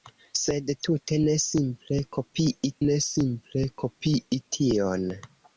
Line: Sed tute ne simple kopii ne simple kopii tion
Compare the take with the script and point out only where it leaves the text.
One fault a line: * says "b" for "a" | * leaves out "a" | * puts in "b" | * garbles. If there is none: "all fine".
all fine